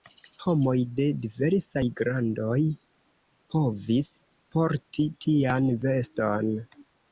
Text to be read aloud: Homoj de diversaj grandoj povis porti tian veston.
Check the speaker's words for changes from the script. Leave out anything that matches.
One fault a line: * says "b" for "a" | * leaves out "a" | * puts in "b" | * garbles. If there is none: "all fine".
all fine